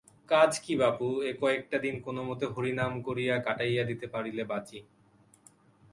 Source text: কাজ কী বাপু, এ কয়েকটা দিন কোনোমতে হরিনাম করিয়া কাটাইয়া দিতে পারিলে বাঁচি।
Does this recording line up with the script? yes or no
yes